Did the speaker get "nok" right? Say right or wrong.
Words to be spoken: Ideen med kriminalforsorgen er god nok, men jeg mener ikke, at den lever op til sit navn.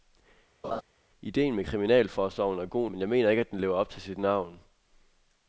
wrong